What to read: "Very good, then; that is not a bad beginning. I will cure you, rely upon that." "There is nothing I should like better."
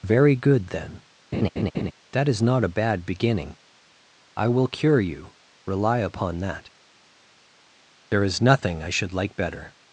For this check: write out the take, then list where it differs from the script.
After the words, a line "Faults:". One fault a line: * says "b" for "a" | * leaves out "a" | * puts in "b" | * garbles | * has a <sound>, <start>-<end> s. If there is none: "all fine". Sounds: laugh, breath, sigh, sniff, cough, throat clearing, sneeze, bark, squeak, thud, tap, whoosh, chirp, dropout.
"Very good, then; that is not a bad beginning. I will cure you, rely upon that." "There is nothing I should like better."
Faults:
* has a laugh, 1.3-1.9 s